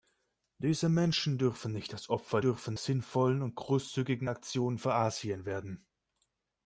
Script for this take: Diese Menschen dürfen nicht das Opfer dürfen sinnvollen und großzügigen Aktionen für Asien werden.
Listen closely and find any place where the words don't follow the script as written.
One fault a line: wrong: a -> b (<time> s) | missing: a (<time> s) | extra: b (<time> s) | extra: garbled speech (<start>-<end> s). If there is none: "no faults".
no faults